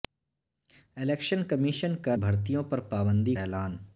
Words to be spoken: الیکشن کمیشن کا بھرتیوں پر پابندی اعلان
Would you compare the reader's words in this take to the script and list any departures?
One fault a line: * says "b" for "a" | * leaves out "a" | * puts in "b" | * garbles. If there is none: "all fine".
all fine